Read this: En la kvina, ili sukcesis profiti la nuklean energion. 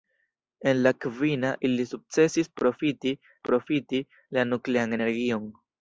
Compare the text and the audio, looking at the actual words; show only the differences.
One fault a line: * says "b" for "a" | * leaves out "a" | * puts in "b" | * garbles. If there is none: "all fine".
* puts in "profiti"